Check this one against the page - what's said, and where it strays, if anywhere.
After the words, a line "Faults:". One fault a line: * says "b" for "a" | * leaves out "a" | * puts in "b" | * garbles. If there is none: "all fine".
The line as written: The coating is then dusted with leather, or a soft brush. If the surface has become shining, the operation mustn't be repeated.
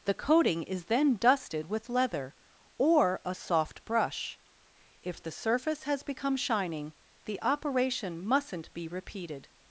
The coating is then dusted with leather, or a soft brush. If the surface has become shining, the operation mustn't be repeated.
Faults:
all fine